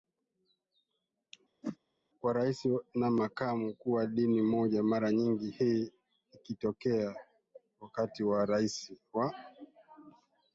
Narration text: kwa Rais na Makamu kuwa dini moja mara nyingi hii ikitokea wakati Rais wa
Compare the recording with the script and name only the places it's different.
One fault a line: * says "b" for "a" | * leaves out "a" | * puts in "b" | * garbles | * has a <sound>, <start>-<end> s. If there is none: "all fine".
* has a whoosh, 1.6-1.8 s